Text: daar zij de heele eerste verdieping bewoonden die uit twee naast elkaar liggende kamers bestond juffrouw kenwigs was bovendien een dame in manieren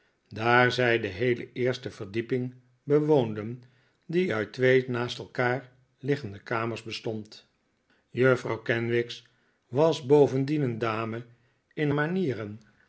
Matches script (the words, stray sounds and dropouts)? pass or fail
pass